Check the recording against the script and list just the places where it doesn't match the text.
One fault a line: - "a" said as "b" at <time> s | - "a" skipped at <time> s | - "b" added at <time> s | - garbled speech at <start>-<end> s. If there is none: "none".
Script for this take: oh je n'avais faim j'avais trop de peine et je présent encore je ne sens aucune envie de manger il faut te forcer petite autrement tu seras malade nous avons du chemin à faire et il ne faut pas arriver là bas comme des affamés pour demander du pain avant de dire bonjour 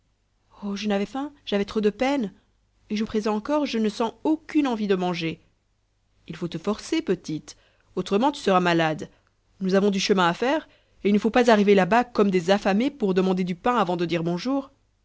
none